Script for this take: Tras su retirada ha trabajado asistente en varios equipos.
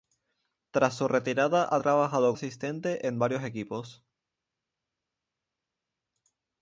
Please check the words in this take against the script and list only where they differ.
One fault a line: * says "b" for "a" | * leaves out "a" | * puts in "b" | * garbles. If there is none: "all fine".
all fine